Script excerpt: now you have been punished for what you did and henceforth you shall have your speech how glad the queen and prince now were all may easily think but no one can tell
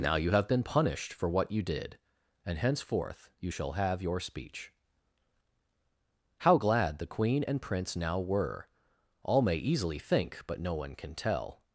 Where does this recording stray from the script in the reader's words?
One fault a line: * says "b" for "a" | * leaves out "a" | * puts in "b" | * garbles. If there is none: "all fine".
all fine